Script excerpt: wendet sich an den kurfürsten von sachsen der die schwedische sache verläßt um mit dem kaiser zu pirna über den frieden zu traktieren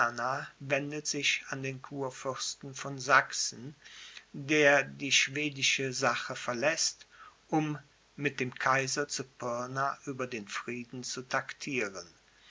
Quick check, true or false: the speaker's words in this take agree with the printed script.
true